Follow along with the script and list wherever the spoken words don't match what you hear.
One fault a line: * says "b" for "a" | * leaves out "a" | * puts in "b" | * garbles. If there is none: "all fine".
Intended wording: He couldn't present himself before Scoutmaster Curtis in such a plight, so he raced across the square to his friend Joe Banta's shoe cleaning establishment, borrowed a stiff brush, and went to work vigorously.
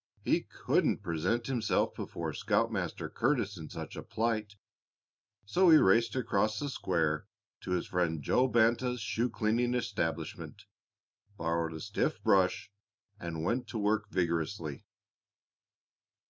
all fine